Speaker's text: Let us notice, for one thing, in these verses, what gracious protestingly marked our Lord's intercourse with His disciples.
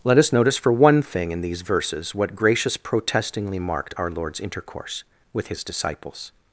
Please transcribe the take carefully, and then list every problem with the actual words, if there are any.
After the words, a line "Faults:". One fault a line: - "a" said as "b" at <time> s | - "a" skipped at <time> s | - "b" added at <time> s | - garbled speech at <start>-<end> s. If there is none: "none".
Let us notice, for one thing, in these verses, what gracious protestingly marked our Lord's intercourse with His disciples.
Faults:
none